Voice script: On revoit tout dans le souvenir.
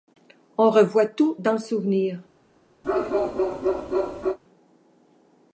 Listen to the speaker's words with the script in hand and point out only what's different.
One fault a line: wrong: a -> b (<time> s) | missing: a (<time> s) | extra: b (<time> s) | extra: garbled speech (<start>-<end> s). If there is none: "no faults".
no faults